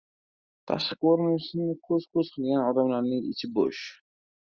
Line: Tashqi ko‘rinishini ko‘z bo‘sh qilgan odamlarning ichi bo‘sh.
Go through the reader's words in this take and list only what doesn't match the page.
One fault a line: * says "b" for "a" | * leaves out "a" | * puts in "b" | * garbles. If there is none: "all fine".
* says "ko‘z" for "bo‘sh"